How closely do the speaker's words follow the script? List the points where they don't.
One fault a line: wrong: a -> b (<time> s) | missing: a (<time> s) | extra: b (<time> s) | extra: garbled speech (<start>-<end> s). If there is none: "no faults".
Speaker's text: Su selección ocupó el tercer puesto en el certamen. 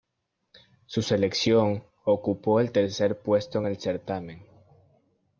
no faults